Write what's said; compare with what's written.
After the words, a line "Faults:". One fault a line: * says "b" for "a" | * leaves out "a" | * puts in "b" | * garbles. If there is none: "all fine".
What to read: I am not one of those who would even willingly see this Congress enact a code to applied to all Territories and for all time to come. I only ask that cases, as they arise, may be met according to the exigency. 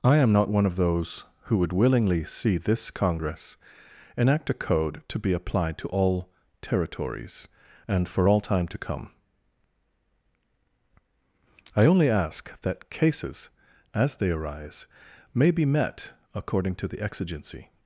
I am not one of those who would willingly see this Congress enact a code to be applied to all Territories and for all time to come. I only ask that cases, as they arise, may be met according to the exigency.
Faults:
* leaves out "even"
* puts in "be"